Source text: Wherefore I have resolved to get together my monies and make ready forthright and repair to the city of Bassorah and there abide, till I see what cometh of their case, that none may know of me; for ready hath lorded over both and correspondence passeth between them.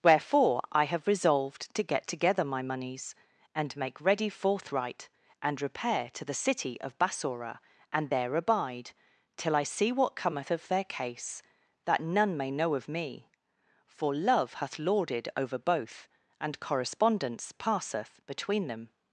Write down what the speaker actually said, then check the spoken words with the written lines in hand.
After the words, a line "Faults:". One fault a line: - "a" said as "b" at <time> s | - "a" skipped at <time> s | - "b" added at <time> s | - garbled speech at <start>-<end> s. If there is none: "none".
Wherefore I have resolved to get together my monies and make ready forthright and repair to the city of Bassorah and there abide, till I see what cometh of their case, that none may know of me; for love hath lorded over both and correspondence passeth between them.
Faults:
- "ready" said as "love" at 14.1 s